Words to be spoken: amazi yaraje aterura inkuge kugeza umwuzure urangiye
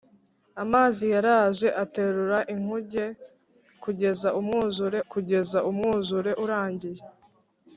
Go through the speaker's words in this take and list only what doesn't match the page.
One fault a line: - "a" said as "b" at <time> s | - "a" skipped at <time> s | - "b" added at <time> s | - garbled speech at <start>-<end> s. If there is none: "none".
- "kugeza umwuzure" added at 5.1 s